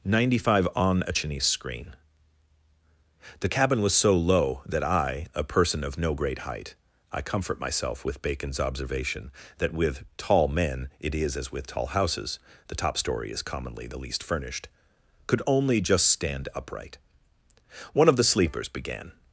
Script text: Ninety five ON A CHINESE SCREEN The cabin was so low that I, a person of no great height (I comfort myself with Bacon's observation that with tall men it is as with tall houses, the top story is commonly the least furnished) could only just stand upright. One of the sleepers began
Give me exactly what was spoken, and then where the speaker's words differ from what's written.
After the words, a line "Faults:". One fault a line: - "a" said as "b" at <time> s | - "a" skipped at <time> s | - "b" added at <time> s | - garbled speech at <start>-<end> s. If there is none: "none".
Ninety five ON A CHINESE SCREEN The cabin was so low that I, a person of no great height (I comfort myself with Bacon's observation that with tall men it is as with tall houses, the top story is commonly the least furnished) could only just stand upright. One of the sleepers began
Faults:
none